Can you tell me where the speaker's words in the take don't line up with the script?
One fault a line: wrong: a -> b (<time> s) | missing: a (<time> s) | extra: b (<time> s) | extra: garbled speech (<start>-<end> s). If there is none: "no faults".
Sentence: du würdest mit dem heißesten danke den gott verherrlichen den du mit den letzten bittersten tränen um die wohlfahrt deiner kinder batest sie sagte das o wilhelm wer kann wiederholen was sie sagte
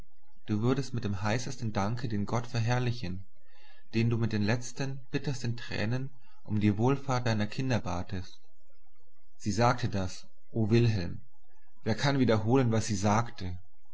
no faults